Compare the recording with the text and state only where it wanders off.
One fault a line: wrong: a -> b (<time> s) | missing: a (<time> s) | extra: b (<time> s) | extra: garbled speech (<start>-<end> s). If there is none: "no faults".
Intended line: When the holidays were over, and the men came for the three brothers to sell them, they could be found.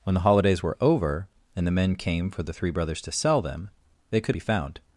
no faults